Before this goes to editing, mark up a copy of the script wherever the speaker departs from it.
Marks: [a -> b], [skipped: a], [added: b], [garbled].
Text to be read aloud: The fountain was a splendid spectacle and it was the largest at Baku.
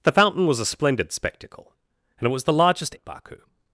The fountain was a splendid spectacle and it was the largest at Baku.